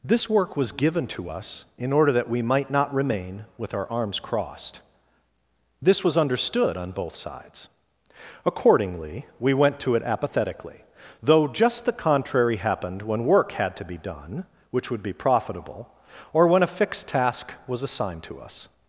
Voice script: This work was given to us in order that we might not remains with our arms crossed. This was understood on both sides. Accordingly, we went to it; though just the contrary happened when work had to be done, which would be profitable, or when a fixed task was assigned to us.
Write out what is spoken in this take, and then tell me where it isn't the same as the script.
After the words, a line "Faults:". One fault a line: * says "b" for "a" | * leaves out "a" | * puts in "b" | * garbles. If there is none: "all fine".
This work was given to us in order that we might not remain with our arms crossed. This was understood on both sides. Accordingly, we went to it apathetically; though just the contrary happened when work had to be done, which would be profitable, or when a fixed task was assigned to us.
Faults:
* says "remain" for "remains"
* puts in "apathetically"